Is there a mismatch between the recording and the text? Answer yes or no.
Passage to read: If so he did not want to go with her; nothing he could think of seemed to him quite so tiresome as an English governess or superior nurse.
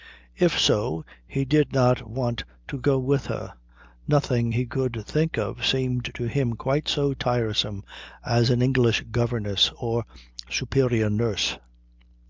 no